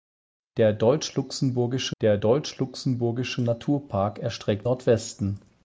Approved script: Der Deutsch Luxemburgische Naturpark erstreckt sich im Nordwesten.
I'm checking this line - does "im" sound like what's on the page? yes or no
no